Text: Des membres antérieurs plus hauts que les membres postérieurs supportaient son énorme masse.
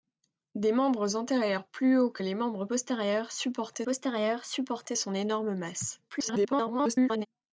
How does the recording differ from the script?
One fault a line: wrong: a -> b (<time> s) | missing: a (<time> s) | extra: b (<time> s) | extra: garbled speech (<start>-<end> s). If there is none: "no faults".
extra: postérieurs supportaient (3.8 s)
extra: garbled speech (6.1-7.3 s)